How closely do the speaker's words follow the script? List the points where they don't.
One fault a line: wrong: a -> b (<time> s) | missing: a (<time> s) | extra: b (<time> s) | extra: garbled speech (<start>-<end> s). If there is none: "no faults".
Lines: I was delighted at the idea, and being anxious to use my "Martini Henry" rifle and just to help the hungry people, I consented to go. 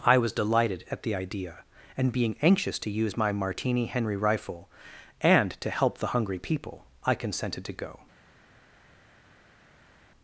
missing: just (5.5 s)